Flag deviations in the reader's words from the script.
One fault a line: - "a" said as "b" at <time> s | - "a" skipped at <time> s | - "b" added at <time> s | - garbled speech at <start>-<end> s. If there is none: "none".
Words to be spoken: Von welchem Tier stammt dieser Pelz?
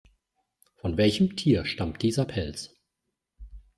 none